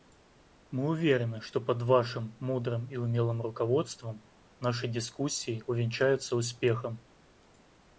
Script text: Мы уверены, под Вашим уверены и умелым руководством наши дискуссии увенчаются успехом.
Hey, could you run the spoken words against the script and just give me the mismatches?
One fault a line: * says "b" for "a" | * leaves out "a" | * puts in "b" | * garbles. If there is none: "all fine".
* puts in "что"
* says "мудрым" for "уверены"